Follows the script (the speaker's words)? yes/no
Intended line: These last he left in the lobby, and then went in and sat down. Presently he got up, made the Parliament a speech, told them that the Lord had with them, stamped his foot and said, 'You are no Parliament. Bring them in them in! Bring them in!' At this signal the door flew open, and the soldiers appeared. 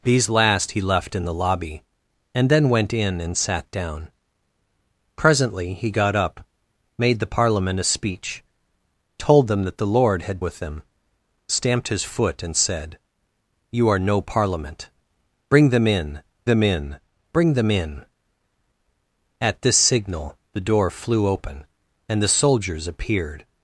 yes